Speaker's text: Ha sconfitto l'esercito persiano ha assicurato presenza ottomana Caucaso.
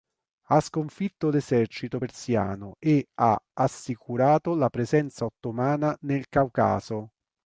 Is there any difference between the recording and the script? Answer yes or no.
yes